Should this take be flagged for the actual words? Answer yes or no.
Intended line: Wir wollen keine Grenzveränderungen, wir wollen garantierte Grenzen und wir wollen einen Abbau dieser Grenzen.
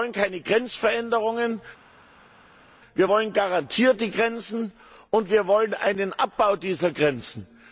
no